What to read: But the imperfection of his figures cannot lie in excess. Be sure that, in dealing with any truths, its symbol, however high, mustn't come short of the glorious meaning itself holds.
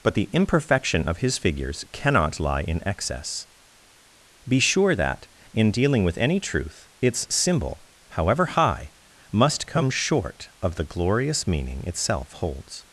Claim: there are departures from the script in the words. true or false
true